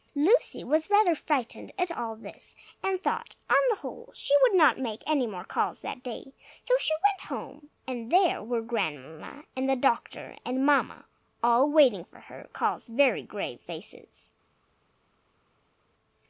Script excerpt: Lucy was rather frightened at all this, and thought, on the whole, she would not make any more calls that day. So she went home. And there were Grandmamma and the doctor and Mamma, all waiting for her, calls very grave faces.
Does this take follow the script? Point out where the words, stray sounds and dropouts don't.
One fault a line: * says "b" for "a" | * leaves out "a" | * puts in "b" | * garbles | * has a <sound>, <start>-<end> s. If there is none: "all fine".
all fine